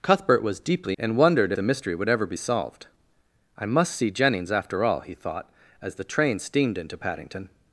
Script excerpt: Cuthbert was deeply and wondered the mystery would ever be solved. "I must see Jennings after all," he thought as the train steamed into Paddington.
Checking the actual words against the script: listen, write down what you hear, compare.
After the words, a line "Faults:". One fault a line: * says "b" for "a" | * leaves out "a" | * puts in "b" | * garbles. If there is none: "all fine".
Cuthbert was deeply and wondered the mystery would ever be solved. "I must see Jennings after all," he thought as the train steamed into Paddington.
Faults:
all fine